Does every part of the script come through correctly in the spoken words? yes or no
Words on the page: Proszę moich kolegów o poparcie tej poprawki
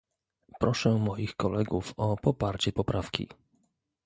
no